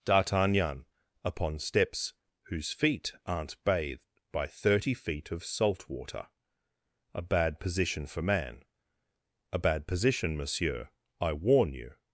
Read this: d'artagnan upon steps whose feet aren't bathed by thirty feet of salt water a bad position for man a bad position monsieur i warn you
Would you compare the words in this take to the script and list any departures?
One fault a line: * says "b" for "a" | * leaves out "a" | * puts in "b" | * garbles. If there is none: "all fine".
all fine